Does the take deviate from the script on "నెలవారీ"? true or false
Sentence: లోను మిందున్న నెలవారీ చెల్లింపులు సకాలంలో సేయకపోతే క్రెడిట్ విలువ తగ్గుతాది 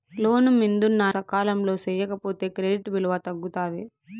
true